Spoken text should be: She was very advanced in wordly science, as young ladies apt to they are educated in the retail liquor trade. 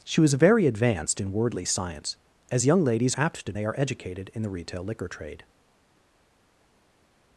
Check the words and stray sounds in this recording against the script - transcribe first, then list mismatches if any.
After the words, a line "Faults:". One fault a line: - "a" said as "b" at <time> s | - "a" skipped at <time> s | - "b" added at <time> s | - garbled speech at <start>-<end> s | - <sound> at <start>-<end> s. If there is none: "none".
She was very advanced in wordly science, as young ladies apt to they are educated in the retail liquor trade.
Faults:
none